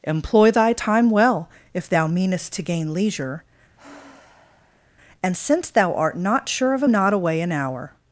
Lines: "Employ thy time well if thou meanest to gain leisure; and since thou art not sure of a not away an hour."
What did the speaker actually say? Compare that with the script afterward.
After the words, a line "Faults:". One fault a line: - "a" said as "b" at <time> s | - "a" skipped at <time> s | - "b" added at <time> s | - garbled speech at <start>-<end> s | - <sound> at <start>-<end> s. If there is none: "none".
"Employ thy time well if thou meanest to gain leisure; and since thou art not sure of a not away an hour."
Faults:
- sigh at 3.8-4.9 s